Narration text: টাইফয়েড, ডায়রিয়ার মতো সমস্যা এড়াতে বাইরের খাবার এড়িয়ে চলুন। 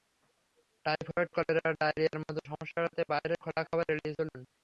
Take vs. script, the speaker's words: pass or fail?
fail